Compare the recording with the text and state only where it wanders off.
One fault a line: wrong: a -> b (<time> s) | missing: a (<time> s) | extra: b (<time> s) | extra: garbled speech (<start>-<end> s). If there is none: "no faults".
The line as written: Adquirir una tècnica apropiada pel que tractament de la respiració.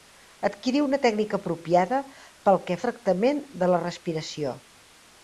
no faults